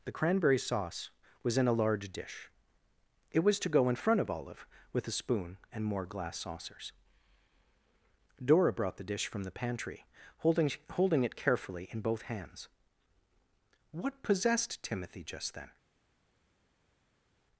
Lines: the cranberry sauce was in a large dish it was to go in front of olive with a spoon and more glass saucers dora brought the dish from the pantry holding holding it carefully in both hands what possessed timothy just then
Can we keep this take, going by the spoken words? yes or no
yes